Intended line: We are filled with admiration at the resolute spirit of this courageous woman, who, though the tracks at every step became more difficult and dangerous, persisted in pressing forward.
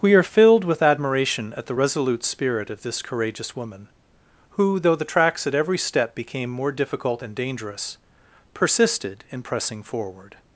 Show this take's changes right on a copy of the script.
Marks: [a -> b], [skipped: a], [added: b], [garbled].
We are filled with admiration at the resolute spirit of this courageous woman, who, though the tracks at every step became more difficult and dangerous, persisted in pressing forward.